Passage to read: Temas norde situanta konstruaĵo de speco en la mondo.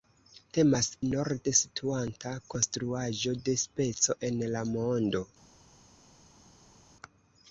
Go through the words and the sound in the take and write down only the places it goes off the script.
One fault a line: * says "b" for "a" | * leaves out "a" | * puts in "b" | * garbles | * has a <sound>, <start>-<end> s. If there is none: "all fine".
all fine